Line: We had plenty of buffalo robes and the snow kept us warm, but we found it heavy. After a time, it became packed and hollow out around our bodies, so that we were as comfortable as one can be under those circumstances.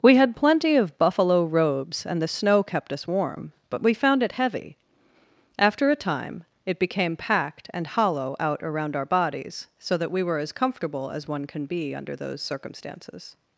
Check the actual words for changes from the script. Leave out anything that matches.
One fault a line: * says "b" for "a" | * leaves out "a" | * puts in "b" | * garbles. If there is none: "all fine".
all fine